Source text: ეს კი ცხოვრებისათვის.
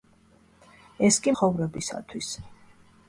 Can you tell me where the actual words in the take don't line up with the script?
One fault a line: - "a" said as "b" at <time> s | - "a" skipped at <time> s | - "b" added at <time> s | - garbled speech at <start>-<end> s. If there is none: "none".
none